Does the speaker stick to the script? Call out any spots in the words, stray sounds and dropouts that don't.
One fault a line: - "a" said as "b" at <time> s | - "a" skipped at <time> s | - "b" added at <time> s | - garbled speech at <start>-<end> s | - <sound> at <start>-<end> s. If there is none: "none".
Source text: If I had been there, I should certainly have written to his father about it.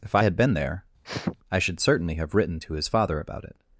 - sniff at 1.0-1.4 s